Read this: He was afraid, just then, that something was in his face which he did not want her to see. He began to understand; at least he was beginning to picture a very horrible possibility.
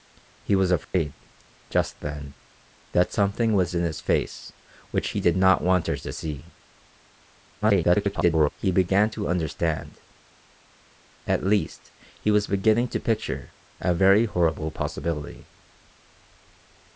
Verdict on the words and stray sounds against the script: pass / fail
fail